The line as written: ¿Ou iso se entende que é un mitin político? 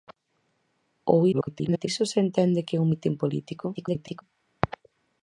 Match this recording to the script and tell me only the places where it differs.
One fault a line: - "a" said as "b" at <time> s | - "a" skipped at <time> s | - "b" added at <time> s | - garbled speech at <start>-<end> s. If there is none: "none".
- garbled speech at 1.3-1.9 s
- garbled speech at 3.7-4.2 s